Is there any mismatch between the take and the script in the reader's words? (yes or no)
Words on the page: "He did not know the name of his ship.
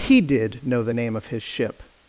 yes